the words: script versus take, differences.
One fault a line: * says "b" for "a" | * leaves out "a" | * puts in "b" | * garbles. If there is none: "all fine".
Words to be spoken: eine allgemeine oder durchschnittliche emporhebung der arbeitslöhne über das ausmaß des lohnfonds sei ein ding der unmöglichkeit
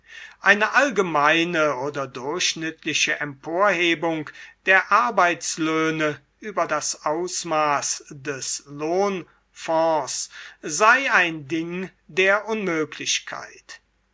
all fine